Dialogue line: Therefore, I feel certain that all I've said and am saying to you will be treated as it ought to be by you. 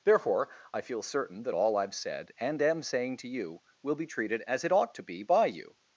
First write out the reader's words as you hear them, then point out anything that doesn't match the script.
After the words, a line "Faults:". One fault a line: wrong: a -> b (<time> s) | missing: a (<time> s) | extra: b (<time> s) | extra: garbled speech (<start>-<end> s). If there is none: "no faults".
Therefore, I feel certain that all I've said and am saying to you will be treated as it ought to be by you.
Faults:
no faults